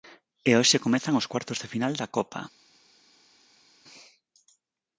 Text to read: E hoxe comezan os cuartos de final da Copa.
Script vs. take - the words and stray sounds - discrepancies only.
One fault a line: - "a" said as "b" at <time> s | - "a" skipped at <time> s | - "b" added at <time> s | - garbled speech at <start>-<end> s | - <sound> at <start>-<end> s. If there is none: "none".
none